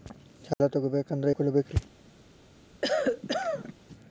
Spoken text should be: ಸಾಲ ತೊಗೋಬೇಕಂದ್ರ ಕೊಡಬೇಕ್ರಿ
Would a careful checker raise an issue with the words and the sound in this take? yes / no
yes